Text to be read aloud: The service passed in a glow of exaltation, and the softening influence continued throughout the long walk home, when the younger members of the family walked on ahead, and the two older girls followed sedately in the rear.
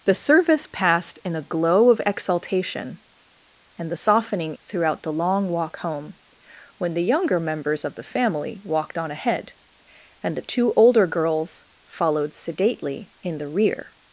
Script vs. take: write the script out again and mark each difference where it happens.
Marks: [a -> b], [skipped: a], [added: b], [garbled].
The service passed in a glow of exaltation, and the softening [skipped: influence continued] throughout the long walk home, when the younger members of the family walked on ahead, and the two older girls followed sedately in the rear.